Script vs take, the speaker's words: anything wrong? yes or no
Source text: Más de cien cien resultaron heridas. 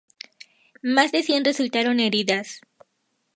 yes